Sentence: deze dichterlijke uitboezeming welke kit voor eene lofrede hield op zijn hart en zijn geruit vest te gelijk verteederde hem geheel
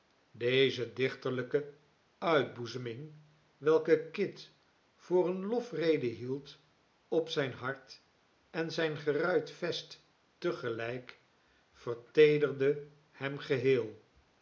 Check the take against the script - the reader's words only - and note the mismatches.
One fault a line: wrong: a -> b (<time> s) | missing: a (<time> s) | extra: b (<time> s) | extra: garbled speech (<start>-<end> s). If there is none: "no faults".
no faults